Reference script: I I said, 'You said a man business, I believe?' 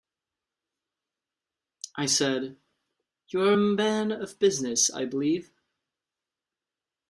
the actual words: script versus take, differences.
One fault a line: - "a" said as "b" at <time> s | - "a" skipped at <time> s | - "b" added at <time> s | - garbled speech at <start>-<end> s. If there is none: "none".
- "I" skipped at 2.1 s
- "said" said as "are" at 3.4 s
- "of" added at 4.1 s